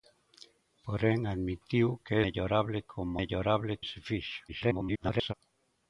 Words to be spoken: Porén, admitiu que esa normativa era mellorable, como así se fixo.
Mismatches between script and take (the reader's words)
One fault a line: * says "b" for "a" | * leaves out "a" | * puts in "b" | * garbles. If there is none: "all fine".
* leaves out "esa normativa era"
* says "mellorable" for "así"
* garbles